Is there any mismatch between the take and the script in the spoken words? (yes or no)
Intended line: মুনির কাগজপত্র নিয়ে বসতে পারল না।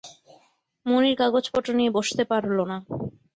no